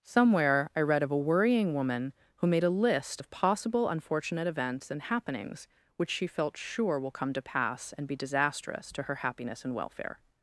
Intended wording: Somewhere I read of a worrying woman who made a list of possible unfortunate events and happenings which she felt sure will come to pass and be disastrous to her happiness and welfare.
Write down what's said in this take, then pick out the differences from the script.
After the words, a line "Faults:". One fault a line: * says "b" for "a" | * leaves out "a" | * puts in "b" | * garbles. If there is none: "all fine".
Somewhere I read of a worrying woman who made a list of possible unfortunate events and happenings which she felt sure will come to pass and be disastrous to her happiness and welfare.
Faults:
all fine